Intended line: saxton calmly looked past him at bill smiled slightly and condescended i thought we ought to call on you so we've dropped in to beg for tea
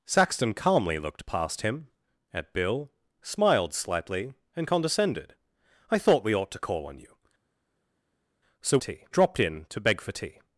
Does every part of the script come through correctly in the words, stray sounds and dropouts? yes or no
no